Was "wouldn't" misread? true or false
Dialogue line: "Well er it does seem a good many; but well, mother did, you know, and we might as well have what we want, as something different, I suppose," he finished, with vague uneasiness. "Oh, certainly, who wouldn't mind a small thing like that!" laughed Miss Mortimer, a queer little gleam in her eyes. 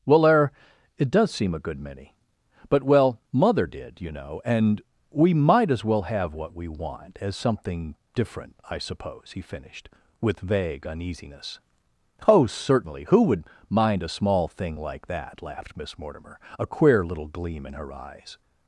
true